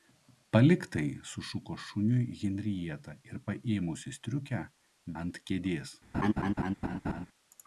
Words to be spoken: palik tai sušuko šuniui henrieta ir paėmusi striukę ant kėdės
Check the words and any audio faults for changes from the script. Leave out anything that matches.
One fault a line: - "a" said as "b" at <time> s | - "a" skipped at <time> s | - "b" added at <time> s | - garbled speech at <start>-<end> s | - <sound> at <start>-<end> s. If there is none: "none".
- laugh at 6.1-7.3 s